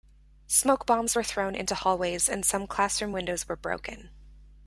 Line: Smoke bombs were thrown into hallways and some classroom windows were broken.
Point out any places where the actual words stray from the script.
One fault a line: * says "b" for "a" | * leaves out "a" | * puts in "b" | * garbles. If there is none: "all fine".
all fine